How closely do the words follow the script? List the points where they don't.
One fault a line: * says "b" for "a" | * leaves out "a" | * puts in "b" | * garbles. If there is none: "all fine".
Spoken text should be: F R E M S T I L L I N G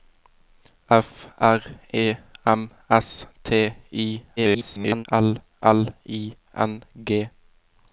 * garbles